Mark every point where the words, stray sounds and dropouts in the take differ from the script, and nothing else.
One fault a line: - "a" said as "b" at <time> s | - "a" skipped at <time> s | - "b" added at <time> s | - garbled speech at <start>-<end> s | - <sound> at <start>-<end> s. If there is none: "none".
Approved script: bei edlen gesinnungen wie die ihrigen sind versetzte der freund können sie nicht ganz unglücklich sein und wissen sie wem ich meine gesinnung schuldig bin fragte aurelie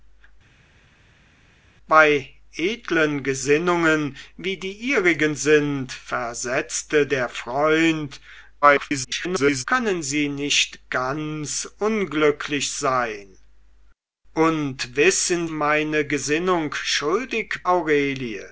- garbled speech at 8.6-9.6 s
- "sie wem ich" skipped at 15.5 s
- "bin fragte" skipped at 17.6 s